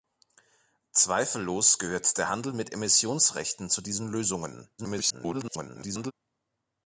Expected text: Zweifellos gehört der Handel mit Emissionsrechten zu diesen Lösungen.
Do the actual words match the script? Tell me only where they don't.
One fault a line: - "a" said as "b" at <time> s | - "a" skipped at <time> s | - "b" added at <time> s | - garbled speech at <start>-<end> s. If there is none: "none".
- garbled speech at 4.8-6.1 s